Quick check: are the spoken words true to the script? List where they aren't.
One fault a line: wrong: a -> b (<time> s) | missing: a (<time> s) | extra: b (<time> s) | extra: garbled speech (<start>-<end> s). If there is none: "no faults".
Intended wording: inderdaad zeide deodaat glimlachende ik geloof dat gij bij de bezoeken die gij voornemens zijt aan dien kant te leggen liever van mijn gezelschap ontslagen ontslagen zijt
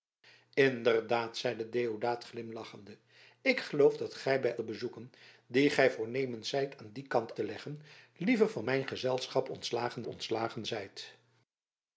no faults